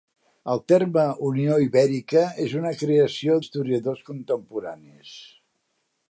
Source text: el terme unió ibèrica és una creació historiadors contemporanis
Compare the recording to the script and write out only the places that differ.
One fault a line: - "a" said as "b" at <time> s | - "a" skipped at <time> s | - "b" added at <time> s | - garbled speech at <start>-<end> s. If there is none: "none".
none